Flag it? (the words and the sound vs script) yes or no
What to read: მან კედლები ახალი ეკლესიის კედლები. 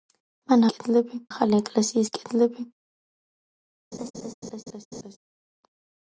yes